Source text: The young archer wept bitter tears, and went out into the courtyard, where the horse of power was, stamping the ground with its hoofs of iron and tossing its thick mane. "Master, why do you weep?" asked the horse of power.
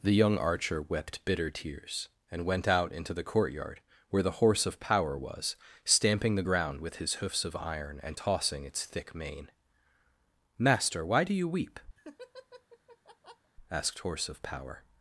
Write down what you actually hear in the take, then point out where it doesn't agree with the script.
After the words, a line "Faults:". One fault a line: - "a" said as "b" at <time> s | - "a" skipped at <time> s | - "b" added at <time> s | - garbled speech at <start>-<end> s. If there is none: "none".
The young archer wept bitter tears, and went out into the courtyard, where the horse of power was, stamping the ground with his hoofs of iron and tossing its thick mane. "Master, why do you weep?" asked horse of power.
Faults:
- "its" said as "his" at 7.0 s
- "the" skipped at 14.0 s